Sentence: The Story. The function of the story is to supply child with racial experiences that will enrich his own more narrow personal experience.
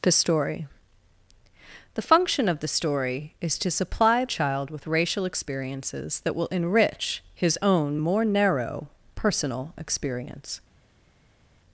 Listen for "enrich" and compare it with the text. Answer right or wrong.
right